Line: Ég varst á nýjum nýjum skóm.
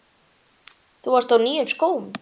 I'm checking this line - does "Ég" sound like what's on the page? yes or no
no